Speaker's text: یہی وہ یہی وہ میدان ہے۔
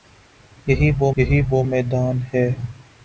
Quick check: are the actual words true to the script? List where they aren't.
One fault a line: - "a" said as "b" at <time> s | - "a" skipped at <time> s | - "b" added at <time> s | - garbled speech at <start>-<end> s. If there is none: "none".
none